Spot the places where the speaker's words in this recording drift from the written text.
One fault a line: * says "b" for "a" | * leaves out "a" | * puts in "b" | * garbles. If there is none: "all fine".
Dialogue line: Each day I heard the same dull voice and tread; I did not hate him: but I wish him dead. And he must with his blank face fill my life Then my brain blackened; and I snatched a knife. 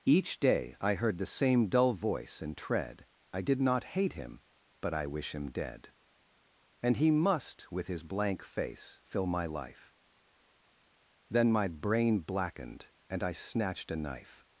all fine